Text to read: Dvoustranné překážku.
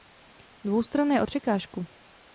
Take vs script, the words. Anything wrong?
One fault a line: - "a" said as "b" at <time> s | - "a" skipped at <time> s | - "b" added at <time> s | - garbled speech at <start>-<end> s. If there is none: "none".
none